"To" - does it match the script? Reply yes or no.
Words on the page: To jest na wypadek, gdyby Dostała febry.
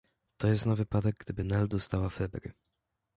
yes